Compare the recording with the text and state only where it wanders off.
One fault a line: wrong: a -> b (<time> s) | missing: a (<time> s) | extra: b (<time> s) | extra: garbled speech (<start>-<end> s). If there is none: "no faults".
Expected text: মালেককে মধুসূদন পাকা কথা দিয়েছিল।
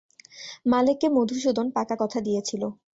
no faults